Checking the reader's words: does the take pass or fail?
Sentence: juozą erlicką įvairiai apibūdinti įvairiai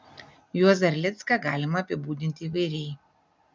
fail